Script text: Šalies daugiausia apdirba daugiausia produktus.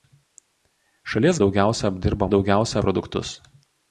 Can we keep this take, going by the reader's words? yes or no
yes